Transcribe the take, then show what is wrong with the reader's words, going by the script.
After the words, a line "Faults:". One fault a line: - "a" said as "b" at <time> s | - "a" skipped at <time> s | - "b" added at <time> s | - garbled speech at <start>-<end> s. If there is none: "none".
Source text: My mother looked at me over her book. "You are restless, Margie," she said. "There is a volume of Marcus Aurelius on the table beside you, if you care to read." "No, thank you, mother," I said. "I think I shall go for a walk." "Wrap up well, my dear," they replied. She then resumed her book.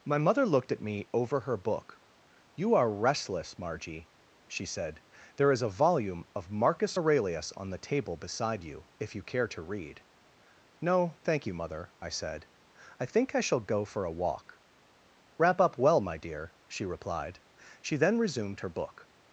My mother looked at me over her book. "You are restless, Margie," she said. "There is a volume of Marcus Aurelius on the table beside you, if you care to read." "No, thank you, mother," I said. "I think I shall go for a walk." "Wrap up well, my dear," she replied. She then resumed her book.
Faults:
- "they" said as "she" at 16.7 s